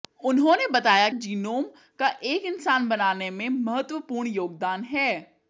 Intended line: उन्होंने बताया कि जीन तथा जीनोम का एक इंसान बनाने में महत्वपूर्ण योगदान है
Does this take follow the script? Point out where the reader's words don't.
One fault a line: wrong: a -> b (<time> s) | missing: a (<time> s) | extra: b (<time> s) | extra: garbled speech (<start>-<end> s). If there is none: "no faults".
missing: कि जीन तथा (1.1 s)